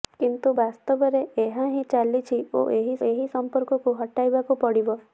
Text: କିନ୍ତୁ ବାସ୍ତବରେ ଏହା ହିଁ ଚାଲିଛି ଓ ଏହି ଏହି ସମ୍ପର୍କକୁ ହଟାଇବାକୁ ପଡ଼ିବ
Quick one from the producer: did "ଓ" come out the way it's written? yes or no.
yes